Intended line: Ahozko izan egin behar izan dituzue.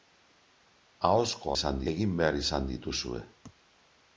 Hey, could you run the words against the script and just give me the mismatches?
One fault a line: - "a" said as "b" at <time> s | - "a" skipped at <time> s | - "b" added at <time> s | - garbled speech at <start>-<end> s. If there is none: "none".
none